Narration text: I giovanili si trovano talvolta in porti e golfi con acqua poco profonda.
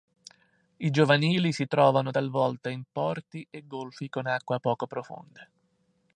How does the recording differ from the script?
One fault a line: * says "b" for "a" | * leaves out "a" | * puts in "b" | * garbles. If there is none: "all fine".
all fine